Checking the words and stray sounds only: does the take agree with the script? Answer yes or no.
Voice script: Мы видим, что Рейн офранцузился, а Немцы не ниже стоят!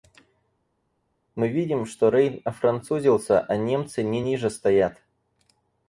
yes